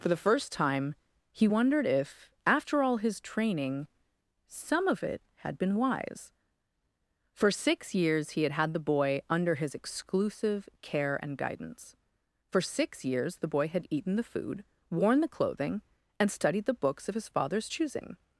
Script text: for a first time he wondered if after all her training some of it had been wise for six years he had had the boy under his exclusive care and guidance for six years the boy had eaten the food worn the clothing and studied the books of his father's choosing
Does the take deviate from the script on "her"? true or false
true